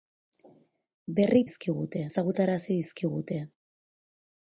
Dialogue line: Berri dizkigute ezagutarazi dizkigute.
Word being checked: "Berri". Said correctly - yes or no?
yes